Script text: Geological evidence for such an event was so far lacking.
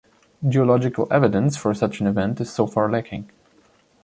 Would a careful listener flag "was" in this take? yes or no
yes